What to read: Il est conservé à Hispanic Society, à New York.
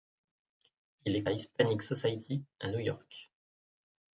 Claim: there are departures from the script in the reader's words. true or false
true